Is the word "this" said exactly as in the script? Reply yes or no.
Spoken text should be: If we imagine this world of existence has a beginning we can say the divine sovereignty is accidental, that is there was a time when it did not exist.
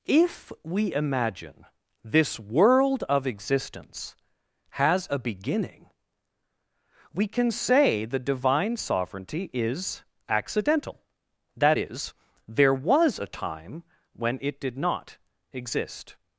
yes